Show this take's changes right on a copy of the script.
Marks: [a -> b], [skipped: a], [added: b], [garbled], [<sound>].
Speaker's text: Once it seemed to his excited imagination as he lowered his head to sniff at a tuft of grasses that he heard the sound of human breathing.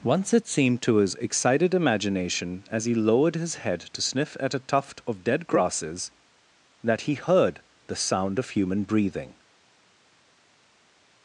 Once it seemed to his excited imagination as he lowered his head to sniff at a tuft of [added: dead] grasses that he heard the sound of human breathing.